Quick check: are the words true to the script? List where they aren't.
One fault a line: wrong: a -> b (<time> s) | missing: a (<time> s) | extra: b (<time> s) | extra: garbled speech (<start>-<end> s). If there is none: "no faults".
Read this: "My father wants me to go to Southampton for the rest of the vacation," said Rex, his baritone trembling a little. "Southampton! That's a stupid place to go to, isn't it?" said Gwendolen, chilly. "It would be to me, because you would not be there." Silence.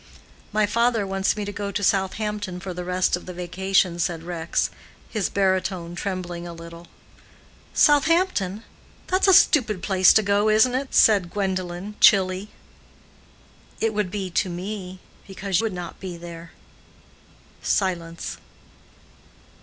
missing: you (15.6 s)